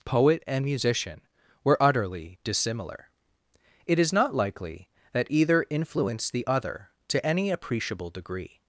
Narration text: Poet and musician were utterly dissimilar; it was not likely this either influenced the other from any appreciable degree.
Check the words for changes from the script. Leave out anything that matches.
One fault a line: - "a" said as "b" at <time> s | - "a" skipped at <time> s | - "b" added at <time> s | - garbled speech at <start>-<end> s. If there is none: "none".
- "was" said as "is" at 4.0 s
- "this" said as "that" at 5.1 s
- "from" said as "to" at 7.1 s